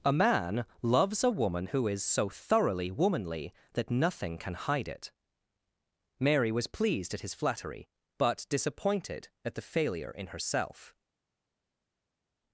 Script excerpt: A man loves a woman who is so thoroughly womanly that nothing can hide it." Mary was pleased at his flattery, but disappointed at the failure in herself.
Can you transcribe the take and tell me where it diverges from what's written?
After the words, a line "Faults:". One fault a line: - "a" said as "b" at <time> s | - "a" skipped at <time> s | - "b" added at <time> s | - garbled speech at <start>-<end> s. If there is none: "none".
A man loves a woman who is so thoroughly womanly that nothing can hide it." Mary was pleased at his flattery, but disappointed at the failure in herself.
Faults:
none